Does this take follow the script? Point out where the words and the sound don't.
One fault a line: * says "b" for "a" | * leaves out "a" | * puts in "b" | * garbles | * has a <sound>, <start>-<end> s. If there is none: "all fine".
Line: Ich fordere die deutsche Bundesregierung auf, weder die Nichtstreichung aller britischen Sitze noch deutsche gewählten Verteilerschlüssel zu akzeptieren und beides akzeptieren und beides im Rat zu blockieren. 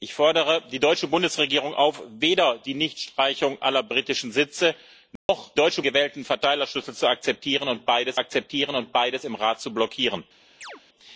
* has a dropout, 5.2-5.3 s
* has a chirp, 10.6-10.8 s